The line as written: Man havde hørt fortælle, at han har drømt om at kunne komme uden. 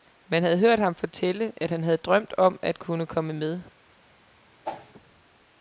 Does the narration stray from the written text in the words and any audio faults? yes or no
yes